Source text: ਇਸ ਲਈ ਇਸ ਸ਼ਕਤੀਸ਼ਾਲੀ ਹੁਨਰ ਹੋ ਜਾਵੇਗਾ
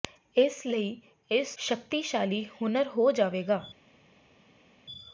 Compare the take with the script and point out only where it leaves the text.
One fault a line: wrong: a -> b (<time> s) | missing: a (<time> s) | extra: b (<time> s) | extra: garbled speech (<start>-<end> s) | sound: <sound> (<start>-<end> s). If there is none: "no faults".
no faults